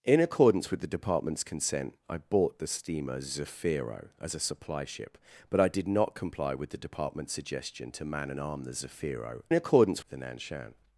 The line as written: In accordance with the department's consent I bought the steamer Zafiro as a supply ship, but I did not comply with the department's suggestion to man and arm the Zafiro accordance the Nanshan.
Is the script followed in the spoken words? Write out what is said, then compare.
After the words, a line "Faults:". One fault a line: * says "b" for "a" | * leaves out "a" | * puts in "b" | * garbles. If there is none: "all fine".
In accordance with the department's consent I bought the steamer Zafiro as a supply ship, but I did not comply with the department's suggestion to man and arm the Zafiro accordance the Nanshan.
Faults:
all fine